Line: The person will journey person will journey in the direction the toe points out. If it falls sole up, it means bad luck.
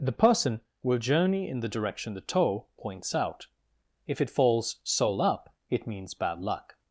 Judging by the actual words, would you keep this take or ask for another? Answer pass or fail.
fail